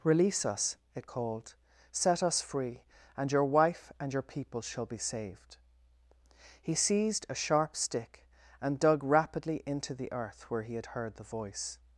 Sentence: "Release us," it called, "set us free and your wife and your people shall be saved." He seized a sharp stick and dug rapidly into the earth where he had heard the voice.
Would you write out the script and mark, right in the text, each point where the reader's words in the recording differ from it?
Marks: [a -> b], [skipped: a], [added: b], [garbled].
"Release us," it called, "set us free and your wife and your people shall be saved." He seized a sharp stick and dug rapidly into the earth where he had heard the voice.